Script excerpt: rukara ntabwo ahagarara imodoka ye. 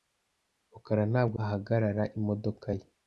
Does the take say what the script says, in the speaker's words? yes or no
yes